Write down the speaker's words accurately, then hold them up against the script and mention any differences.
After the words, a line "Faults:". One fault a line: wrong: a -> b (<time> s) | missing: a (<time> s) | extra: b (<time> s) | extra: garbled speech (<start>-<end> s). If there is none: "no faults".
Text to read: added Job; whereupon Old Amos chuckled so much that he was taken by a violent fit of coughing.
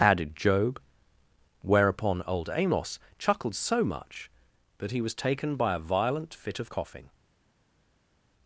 added Job; whereupon Old Amos chuckled so much that he was taken by a violent fit of coughing.
Faults:
no faults